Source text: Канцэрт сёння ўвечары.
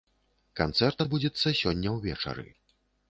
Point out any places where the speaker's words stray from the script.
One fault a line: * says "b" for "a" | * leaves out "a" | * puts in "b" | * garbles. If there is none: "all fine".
* puts in "адбудзецца"